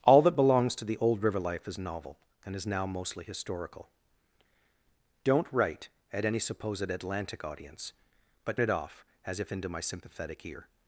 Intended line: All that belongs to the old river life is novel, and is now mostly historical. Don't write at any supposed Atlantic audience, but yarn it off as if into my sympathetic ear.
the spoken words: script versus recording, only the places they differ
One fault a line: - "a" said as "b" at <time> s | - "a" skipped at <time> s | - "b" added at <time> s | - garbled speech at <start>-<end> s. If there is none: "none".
- "yarn" skipped at 8.6 s